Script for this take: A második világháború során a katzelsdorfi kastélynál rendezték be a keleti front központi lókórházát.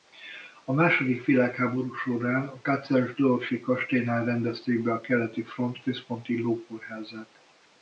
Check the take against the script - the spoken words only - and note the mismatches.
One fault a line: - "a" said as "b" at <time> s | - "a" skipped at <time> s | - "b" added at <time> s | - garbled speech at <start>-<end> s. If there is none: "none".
none